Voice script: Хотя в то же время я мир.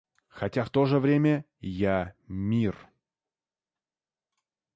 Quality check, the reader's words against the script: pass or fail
pass